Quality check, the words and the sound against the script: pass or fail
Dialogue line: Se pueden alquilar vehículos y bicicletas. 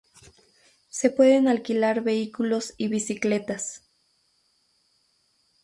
pass